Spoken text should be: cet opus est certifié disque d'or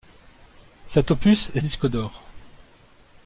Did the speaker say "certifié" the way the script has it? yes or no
no